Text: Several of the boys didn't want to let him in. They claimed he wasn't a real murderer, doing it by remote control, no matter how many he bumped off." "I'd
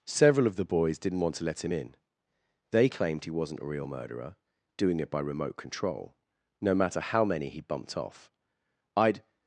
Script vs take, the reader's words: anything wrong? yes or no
no